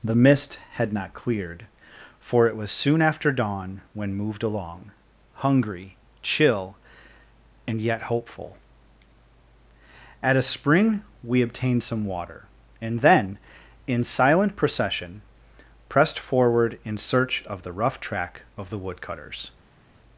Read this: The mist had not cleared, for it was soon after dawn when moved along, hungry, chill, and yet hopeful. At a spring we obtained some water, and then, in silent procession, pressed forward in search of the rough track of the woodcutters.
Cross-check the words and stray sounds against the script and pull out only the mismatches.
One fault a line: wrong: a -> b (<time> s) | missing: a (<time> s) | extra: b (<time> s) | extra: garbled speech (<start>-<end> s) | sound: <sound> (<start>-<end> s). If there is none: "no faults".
no faults